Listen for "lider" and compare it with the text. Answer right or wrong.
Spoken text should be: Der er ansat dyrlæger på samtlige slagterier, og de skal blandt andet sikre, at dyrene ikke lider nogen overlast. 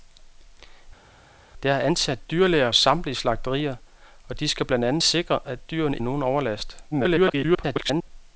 wrong